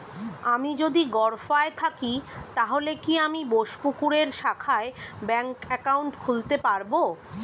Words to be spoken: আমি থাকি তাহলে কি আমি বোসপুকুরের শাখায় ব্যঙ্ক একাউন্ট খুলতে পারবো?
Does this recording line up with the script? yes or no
no